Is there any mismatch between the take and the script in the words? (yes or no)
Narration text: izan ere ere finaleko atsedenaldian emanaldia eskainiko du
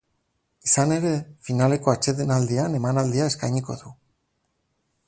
yes